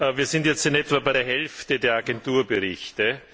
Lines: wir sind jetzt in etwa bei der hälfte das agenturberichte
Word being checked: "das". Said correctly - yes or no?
no